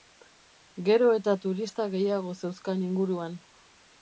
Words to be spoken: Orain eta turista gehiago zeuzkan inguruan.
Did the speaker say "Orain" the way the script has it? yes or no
no